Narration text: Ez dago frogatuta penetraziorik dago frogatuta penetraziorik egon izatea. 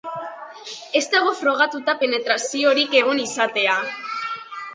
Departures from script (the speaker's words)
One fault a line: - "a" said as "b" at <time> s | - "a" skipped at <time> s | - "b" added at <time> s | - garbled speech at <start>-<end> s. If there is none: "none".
- "dago frogatuta penetraziorik" skipped at 3.0 s